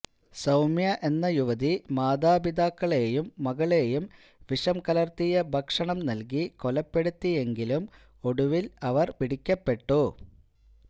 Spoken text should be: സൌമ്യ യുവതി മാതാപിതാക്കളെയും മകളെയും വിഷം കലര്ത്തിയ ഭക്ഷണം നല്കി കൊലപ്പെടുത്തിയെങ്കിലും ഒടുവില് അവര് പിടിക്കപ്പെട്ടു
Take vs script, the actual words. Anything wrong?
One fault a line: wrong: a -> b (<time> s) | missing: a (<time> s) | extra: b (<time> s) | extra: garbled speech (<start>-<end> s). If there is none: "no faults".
extra: എന്ന (1.0 s)